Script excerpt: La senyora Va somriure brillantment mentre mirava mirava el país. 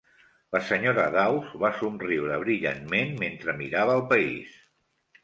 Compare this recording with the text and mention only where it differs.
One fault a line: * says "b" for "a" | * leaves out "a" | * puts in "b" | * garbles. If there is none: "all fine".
* puts in "Dawes"
* leaves out "mirava"